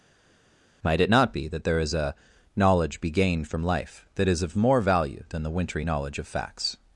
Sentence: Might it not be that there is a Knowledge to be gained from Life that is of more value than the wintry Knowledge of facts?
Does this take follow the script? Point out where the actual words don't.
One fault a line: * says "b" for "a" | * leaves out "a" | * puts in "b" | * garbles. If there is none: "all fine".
* leaves out "to"